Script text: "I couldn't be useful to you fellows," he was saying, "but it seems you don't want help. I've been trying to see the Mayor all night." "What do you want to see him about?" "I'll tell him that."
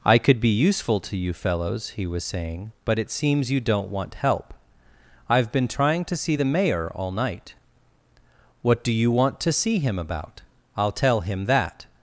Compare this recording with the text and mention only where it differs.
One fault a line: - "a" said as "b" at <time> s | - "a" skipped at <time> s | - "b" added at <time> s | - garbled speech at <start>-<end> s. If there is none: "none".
- "couldn't" said as "could" at 0.2 s